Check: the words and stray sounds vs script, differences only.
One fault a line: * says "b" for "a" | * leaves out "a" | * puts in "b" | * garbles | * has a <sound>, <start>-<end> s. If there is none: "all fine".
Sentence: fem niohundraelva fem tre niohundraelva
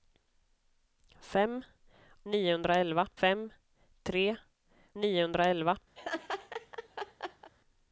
* has a laugh, 6.0-7.5 s